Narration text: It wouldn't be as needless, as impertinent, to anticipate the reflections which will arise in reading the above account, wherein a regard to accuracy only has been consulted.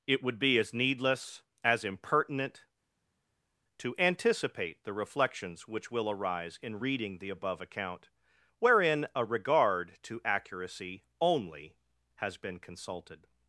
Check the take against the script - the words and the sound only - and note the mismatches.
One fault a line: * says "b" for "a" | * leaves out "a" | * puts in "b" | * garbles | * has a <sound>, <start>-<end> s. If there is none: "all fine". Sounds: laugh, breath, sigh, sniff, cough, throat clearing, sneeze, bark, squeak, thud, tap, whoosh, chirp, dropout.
* says "would" for "wouldn't"